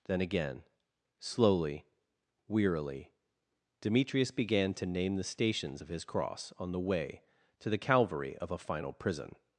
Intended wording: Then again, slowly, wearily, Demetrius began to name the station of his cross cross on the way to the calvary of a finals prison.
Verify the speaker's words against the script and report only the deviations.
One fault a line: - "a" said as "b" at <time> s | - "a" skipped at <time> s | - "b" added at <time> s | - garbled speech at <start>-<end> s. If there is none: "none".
- "station" said as "stations" at 5.2 s
- "cross" skipped at 6.5 s
- "finals" said as "final" at 8.6 s